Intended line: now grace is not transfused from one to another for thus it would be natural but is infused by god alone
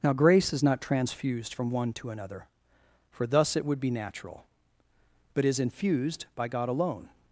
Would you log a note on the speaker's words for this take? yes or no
no